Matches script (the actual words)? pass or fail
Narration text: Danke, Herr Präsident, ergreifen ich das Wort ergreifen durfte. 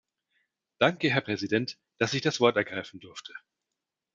fail